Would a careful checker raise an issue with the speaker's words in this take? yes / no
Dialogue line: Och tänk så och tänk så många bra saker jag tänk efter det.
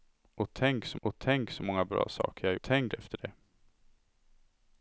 no